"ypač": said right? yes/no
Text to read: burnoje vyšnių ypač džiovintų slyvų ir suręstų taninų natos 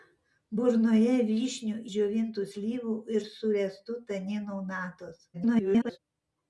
no